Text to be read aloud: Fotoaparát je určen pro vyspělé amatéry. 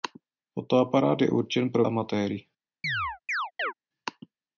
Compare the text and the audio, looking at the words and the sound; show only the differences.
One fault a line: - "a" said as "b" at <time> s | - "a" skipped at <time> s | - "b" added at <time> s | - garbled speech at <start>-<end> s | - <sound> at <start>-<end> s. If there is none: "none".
- "vyspělé" skipped at 1.9 s
- chirp at 2.8-3.7 s